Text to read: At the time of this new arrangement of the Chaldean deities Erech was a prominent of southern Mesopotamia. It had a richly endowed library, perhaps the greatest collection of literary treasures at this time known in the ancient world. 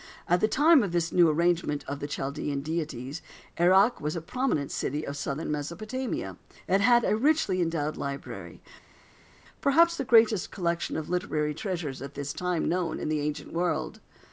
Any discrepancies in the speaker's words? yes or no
yes